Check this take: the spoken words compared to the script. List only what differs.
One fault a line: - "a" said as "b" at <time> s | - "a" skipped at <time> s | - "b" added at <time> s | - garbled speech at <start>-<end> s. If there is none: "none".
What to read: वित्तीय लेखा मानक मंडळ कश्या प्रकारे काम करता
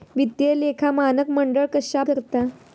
- "प्रकारे काम" skipped at 2.0 s